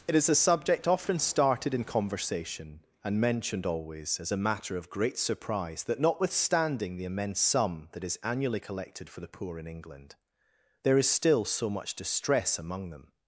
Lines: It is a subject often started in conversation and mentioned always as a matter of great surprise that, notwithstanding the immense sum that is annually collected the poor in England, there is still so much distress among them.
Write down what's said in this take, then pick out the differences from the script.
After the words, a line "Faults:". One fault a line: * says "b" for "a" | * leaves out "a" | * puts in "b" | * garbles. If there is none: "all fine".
It is a subject often started in conversation and mentioned always as a matter of great surprise that, notwithstanding the immense sum that is annually collected for the poor in England, there is still so much distress among them.
Faults:
* puts in "for"